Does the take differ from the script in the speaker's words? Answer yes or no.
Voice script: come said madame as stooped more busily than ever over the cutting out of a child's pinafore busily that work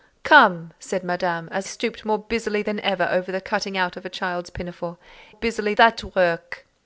no